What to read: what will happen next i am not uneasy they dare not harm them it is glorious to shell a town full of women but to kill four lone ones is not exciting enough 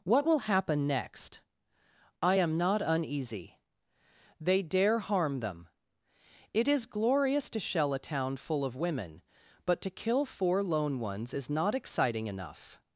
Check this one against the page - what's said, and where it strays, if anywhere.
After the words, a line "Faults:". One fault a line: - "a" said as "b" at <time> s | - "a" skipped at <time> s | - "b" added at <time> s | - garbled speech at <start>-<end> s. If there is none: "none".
what will happen next i am not uneasy they dare harm them it is glorious to shell a town full of women but to kill four lone ones is not exciting enough
Faults:
- "not" skipped at 5.0 s